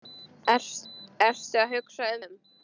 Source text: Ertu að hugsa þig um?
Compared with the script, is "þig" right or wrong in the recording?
wrong